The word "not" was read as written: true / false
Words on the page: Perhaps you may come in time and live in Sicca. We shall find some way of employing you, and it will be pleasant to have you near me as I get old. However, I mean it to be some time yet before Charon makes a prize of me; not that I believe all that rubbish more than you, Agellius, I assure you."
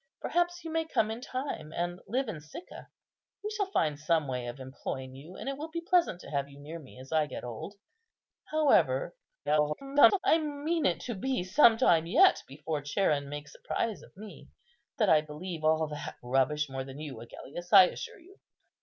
false